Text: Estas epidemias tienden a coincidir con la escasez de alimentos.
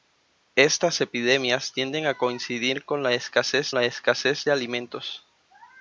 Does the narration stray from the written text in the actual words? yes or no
yes